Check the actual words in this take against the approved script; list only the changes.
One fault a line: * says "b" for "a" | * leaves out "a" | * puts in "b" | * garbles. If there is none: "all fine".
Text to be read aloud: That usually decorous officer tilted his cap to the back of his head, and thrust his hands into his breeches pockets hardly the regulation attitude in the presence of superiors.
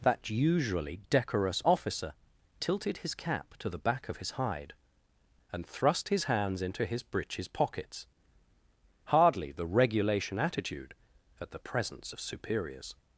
* says "hide" for "head"
* says "at" for "in"